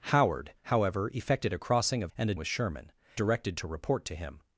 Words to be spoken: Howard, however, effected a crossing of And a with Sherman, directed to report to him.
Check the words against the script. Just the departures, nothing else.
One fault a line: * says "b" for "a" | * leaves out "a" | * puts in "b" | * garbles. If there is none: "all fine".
all fine